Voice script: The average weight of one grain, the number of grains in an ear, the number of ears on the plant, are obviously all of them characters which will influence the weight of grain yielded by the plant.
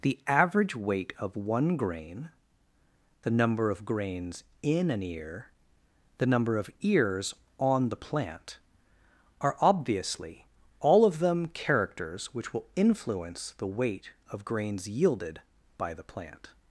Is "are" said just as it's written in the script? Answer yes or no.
yes